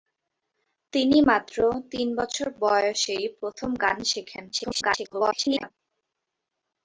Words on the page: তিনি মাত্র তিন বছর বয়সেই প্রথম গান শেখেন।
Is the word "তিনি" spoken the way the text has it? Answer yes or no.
yes